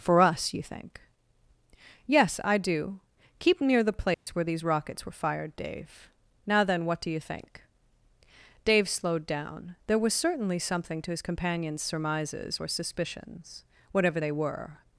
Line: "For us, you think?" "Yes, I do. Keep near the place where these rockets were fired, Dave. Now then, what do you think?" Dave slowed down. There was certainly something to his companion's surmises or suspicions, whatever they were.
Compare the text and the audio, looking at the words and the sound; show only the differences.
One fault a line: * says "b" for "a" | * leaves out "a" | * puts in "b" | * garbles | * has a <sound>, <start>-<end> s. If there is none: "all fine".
* has a dropout, 4.1-4.3 s